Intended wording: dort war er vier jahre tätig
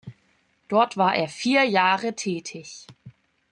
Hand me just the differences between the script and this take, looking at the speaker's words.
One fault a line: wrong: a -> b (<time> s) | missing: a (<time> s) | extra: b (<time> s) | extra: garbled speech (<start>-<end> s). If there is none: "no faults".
no faults